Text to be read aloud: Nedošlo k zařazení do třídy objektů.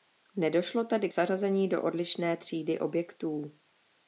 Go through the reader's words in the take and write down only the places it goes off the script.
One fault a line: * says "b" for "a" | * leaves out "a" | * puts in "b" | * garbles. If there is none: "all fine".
* puts in "tedy"
* puts in "odlišné"